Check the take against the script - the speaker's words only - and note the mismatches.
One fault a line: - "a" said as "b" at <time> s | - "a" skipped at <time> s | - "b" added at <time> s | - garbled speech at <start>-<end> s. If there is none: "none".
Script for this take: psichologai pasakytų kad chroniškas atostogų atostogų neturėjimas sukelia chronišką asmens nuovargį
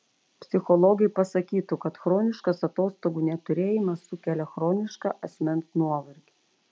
- "atostogų" skipped at 3.2 s